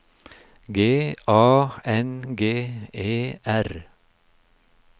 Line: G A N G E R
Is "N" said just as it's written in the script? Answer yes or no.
yes